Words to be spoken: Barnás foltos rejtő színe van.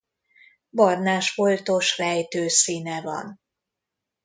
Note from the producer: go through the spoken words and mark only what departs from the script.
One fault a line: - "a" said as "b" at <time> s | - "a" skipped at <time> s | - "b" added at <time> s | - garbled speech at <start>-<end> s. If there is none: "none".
none